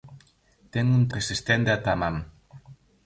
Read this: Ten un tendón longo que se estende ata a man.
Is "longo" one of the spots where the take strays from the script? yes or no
yes